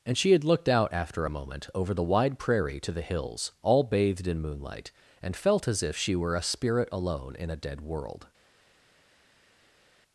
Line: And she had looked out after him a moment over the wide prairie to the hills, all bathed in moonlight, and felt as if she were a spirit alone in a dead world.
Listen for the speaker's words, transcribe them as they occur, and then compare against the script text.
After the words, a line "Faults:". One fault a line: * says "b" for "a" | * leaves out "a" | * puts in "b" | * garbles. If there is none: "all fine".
And she had looked out after a moment over the wide prairie to the hills, all bathed in moonlight, and felt as if she were a spirit alone in a dead world.
Faults:
* leaves out "him"